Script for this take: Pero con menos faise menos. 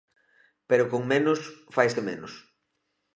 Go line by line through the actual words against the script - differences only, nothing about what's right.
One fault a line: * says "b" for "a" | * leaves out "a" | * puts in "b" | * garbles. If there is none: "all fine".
all fine